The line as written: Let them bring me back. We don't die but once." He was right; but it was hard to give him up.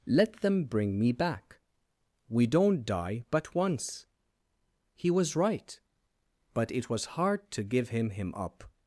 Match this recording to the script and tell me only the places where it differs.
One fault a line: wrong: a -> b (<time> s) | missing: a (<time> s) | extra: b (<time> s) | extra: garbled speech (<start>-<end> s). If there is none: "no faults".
extra: him (8.1 s)